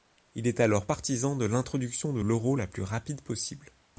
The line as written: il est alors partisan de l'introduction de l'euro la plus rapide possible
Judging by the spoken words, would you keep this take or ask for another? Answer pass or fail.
pass